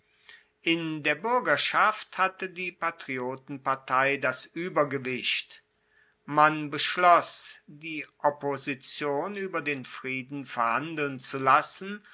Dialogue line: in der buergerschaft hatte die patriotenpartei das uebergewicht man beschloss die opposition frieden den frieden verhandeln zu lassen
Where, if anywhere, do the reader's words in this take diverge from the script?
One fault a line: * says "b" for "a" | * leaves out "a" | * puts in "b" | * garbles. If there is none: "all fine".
* says "ueber" for "frieden"